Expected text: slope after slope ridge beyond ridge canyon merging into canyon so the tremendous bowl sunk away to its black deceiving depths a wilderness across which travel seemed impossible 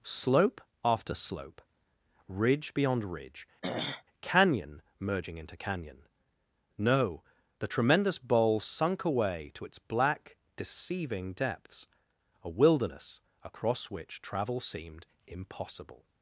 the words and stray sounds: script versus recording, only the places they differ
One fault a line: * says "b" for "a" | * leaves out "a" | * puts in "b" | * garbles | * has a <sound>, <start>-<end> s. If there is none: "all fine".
* has a throat clearing, 3.6-4.0 s
* says "no" for "so"